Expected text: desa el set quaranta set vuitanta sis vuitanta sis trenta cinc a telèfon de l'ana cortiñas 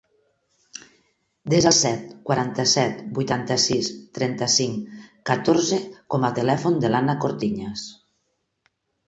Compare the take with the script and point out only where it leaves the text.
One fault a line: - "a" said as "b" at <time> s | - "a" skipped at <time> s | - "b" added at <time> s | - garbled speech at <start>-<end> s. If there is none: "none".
- "vuitanta sis trenta cinc" said as "trenta cinc catorze com" at 4.2 s